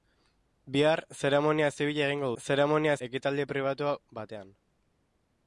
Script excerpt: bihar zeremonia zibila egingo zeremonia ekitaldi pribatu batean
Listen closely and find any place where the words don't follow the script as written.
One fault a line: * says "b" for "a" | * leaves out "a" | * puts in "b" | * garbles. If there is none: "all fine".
all fine